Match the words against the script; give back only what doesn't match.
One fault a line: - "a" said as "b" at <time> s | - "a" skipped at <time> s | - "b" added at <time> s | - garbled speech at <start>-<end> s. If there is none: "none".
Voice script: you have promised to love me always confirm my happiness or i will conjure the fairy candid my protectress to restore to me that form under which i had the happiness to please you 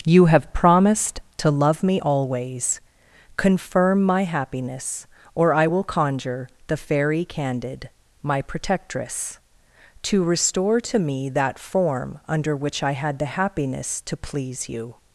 none